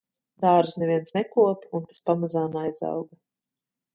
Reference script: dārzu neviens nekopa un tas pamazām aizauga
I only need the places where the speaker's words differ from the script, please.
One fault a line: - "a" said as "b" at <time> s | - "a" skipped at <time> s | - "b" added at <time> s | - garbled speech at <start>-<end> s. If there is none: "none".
none